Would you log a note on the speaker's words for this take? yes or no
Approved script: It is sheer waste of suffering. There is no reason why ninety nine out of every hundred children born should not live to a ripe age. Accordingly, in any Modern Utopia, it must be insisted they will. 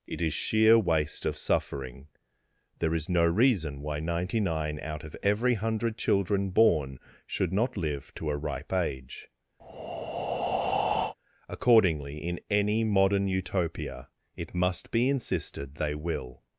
no